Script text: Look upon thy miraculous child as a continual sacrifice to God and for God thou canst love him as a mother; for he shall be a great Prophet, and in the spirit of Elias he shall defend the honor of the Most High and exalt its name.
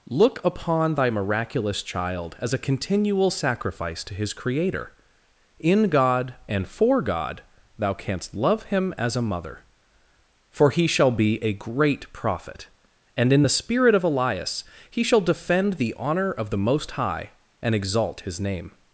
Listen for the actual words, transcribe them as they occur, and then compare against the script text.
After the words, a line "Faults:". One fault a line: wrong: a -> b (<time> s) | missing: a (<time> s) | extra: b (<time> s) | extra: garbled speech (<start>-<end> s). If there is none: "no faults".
Look upon thy miraculous child as a continual sacrifice to his Creator; in God and for God thou canst love him as a mother; for he shall be a great Prophet, and in the spirit of Elias he shall defend the honor of the Most High and exalt his name.
Faults:
extra: his Creator in (4.1 s)
wrong: its -> his (18.2 s)